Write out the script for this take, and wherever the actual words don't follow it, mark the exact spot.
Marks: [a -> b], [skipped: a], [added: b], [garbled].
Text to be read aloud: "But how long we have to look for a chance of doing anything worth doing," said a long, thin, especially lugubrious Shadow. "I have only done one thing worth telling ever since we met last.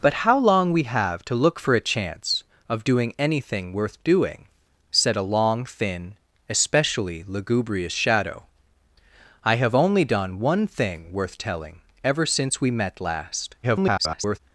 "But how long we have to look for a chance of doing anything worth doing," said a long, thin, especially lugubrious Shadow. "I have only done one thing worth telling ever since we met last. [garbled]